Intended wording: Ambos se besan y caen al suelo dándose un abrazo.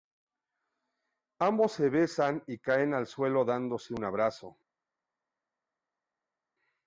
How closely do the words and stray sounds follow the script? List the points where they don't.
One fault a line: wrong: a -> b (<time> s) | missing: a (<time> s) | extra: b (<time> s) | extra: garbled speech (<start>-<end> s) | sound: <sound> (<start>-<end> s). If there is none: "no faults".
no faults